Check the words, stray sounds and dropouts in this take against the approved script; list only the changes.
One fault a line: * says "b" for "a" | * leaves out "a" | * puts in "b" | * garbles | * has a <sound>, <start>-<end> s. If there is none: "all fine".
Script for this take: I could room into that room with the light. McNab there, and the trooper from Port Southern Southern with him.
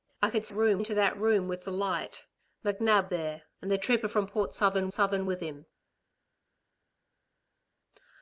all fine